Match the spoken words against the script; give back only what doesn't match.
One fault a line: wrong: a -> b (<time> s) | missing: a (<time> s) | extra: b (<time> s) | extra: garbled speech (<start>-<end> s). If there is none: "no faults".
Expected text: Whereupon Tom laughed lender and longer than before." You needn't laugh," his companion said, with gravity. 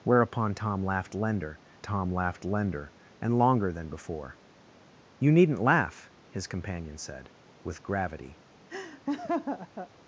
extra: Tom laughed lender (1.8 s)